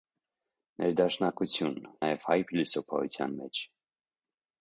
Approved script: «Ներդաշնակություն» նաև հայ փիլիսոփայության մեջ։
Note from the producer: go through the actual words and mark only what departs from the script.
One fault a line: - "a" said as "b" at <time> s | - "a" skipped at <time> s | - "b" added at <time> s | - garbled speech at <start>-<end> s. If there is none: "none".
none